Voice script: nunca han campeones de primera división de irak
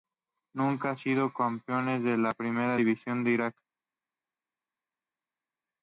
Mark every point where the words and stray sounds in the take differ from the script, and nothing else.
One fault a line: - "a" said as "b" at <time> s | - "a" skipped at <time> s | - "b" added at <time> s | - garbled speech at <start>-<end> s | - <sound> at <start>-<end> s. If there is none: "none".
- "sido" added at 1.0 s
- "la" added at 2.2 s